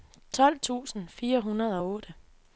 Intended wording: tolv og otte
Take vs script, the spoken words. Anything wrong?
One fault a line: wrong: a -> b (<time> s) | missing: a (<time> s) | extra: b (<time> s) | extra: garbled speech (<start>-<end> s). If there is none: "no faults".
extra: tusind fire hundrede (0.6 s)